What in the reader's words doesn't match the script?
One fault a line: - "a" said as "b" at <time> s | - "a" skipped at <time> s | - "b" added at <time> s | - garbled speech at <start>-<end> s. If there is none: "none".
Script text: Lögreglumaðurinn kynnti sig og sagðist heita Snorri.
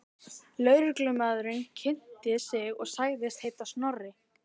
none